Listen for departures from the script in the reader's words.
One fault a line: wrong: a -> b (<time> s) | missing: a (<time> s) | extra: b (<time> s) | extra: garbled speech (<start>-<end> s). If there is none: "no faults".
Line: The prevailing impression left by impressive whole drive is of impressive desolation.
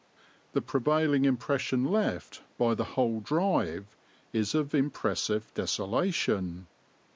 wrong: impressive -> the (2.7 s)